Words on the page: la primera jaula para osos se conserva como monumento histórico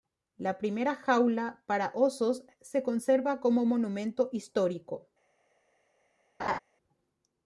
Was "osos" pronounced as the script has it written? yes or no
yes